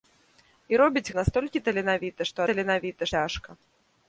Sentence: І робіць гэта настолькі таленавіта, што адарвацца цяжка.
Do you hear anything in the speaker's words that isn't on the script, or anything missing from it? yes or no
yes